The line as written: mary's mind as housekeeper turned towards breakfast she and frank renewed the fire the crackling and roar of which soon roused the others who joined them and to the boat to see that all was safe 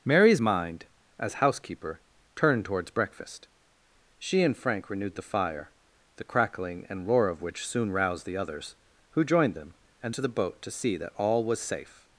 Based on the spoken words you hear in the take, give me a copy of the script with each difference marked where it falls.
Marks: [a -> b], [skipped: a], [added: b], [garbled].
mary's mind as housekeeper turned towards breakfast she and frank renewed the fire the crackling and roar of which soon roused the others who joined them and to the boat to see that all was safe